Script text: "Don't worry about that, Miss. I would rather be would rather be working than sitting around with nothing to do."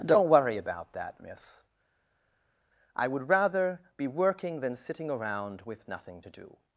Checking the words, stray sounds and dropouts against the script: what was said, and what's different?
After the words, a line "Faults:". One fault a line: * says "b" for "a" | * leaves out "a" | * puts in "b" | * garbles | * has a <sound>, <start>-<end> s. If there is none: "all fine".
"Don't worry about that, Miss. I would rather be working than sitting around with nothing to do."
Faults:
* leaves out "would rather be"